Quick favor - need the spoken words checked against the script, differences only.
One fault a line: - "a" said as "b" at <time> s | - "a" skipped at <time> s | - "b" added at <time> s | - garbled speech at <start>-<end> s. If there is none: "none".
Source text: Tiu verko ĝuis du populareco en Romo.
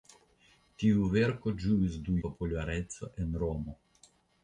none